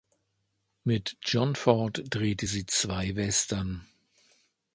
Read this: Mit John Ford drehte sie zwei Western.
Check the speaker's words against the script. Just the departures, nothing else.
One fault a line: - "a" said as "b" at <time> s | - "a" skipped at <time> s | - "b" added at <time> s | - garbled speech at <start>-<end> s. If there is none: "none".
none